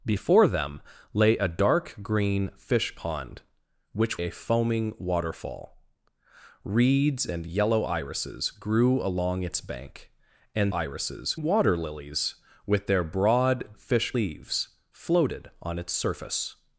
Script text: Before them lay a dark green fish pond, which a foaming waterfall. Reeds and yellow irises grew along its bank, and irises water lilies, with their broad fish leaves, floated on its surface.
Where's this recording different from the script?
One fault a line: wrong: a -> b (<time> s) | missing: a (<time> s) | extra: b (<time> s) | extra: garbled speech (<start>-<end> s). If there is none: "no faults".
no faults